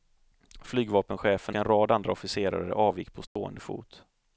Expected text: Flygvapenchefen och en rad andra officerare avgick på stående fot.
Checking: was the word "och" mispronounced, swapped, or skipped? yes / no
yes